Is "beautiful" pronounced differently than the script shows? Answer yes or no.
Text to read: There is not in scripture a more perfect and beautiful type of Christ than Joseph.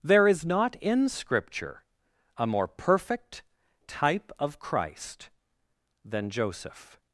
yes